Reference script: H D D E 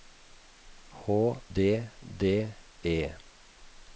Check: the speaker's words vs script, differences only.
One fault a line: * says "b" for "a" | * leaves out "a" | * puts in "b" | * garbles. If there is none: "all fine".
all fine